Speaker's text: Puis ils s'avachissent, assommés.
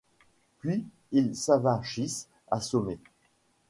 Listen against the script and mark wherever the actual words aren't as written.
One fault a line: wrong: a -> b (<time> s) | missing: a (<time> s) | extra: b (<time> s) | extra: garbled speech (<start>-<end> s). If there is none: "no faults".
no faults